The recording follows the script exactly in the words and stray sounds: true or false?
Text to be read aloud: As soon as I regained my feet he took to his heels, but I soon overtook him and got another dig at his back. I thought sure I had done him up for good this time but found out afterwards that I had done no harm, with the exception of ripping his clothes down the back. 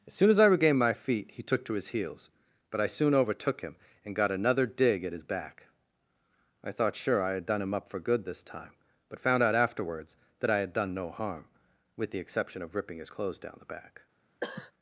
false